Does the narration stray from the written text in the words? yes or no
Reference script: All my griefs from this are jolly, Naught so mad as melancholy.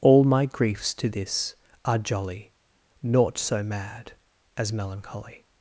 yes